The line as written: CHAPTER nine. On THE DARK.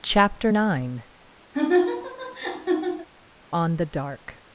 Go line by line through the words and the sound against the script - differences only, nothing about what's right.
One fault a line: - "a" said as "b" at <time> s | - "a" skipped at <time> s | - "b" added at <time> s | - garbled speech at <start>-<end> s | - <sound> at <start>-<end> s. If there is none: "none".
- laugh at 1.5-3.1 s